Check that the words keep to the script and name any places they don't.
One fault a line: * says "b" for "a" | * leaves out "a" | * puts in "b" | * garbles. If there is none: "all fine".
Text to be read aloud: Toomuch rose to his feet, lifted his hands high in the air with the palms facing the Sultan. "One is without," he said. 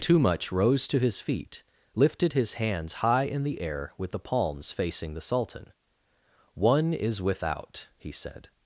all fine